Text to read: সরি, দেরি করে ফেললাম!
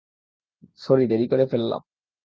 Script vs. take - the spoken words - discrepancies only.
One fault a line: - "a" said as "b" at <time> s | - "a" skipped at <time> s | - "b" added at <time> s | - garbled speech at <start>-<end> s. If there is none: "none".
none